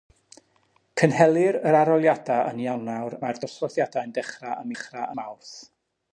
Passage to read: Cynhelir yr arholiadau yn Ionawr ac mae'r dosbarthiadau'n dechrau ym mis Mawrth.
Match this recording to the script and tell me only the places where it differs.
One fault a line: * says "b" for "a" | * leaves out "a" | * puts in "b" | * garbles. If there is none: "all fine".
* leaves out "ac"
* says "dechrau" for "mis"